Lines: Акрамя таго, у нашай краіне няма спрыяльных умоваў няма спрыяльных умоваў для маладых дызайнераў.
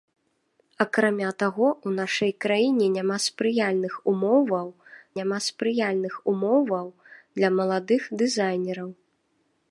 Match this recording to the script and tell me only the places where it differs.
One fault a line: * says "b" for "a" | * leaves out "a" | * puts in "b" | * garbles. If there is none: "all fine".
all fine